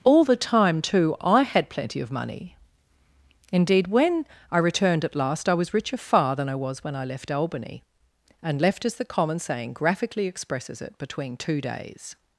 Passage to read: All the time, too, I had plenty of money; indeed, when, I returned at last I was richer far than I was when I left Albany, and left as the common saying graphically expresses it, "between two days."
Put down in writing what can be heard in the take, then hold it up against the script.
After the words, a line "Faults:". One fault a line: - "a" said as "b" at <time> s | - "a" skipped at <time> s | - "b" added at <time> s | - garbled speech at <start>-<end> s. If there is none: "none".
All the time, too, I had plenty of money; indeed, when, I returned at last I was richer far than I was when I left Albany, and left as the common saying graphically expresses it, "between two days."
Faults:
none